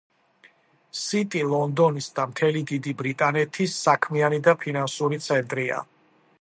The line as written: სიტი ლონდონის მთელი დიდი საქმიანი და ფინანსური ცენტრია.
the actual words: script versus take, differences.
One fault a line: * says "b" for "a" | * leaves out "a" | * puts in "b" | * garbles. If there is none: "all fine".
* puts in "და"
* puts in "ბრიტანეთის"